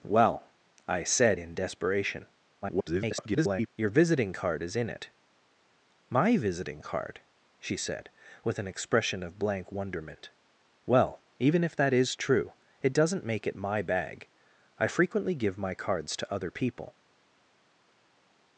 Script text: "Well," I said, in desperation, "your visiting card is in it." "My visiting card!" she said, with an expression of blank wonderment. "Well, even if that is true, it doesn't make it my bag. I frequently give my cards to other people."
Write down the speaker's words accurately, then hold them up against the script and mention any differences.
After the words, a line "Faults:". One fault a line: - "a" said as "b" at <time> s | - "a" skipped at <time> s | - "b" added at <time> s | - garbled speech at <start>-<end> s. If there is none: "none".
"Well," I said, in desperation, [garbled] "your visiting card is in it." "My visiting card!" she said, with an expression of blank wonderment. "Well, even if that is true, it doesn't make it my bag. I frequently give my cards to other people."
Faults:
- garbled speech at 2.6-3.7 s